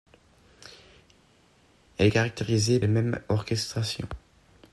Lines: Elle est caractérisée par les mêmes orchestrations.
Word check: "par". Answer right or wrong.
wrong